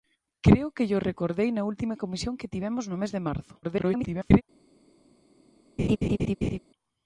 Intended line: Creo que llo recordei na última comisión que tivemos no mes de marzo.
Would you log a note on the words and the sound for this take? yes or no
yes